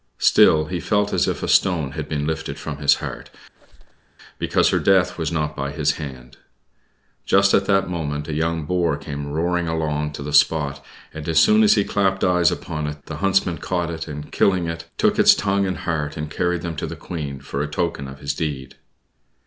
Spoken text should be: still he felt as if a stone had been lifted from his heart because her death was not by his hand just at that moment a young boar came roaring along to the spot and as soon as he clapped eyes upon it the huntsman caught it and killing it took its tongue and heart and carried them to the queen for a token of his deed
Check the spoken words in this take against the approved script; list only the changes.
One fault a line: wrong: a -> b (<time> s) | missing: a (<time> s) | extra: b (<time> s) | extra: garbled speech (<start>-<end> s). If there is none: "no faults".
no faults